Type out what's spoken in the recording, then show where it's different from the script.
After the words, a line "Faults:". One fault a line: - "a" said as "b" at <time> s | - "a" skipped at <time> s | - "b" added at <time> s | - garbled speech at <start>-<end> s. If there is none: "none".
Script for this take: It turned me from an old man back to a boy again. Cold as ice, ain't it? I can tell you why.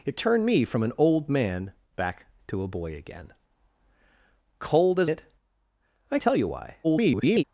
It turned me from an old man back to a boy again. Cold as it? I tell you why. [garbled]
Faults:
- "ice ain't" skipped at 5.1 s
- "can" skipped at 6.2 s
- garbled speech at 6.8-7.4 s